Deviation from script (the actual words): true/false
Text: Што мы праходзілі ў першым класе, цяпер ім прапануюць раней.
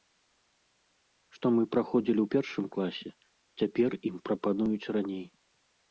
false